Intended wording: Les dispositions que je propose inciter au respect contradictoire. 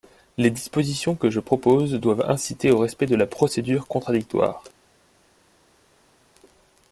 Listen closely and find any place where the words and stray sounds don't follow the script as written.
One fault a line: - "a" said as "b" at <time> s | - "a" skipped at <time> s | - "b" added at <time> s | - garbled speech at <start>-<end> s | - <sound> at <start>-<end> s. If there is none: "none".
- "doivent" added at 1.9 s
- "de la procédure" added at 3.0 s